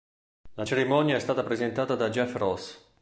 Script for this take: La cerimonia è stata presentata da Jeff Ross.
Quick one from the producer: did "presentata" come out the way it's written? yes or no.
yes